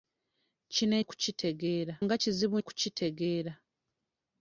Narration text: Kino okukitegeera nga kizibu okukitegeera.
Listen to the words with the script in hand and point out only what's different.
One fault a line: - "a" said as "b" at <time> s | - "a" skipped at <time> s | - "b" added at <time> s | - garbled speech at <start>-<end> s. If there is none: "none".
none